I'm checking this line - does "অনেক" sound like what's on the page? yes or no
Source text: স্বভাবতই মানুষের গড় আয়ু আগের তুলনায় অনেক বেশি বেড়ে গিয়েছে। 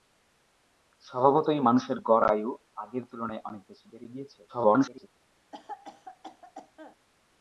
yes